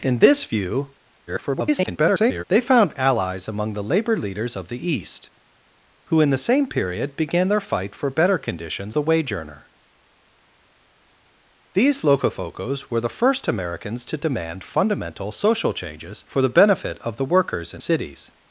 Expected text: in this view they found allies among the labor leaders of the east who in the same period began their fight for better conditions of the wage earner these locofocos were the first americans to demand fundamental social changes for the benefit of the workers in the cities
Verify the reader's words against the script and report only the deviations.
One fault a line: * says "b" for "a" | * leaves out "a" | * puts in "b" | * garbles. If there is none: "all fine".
* garbles
* leaves out "of"
* leaves out "the"